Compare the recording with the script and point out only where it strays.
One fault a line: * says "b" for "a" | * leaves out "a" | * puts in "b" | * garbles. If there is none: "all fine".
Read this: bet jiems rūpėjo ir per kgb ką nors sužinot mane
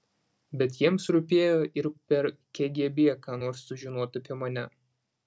* puts in "apie"